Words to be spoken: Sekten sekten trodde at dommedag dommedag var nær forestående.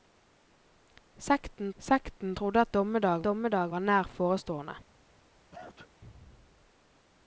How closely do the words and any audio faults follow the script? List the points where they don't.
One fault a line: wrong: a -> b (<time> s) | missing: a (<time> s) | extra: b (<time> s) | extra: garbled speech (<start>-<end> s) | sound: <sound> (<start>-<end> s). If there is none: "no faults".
sound: sneeze (5.5-5.9 s)